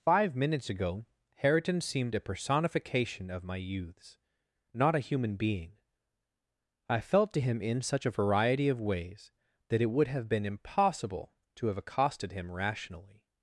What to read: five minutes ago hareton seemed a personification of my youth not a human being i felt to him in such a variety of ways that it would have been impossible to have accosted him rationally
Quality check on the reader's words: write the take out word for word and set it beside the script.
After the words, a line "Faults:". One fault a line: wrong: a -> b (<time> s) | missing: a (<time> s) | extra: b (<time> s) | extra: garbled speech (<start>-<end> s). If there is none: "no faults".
five minutes ago hareton seemed a personification of my youths not a human being i felt to him in such a variety of ways that it would have been impossible to have accosted him rationally
Faults:
wrong: youth -> youths (3.6 s)